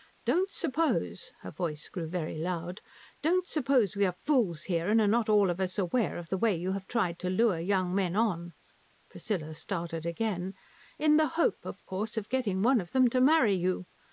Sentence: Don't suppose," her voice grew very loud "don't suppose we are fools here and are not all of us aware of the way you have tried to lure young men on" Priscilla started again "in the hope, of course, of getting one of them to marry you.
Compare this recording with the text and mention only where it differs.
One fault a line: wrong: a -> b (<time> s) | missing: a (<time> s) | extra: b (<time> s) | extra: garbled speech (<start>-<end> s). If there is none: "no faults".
no faults